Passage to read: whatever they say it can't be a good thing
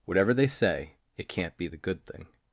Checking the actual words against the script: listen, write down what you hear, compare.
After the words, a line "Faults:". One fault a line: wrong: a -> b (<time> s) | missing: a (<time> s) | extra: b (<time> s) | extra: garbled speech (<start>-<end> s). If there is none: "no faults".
whatever they say it can't be the good thing
Faults:
wrong: a -> the (1.6 s)